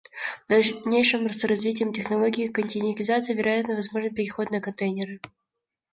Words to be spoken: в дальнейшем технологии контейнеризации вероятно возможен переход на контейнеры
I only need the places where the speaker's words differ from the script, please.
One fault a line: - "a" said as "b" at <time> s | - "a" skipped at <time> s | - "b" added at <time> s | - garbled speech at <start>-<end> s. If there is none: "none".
- "с развитием" added at 1.3 s